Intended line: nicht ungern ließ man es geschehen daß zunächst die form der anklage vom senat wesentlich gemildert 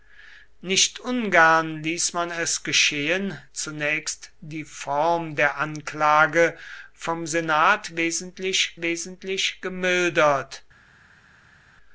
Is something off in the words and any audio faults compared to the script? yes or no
yes